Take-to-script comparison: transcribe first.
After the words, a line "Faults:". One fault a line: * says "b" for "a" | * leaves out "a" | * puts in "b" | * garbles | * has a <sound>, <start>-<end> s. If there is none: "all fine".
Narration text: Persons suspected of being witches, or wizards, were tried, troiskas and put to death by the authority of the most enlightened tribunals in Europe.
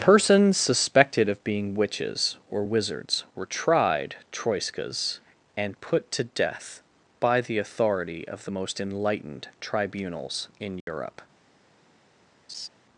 Persons suspected of being witches, or wizards, were tried, troiskas and put to death by the authority of the most enlightened tribunals in Europe.
Faults:
* has a dropout, 10.8-10.9 s
* has a laugh, 12.5-12.7 s